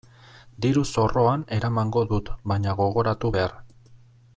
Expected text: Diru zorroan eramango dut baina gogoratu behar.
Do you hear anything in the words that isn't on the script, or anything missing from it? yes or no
no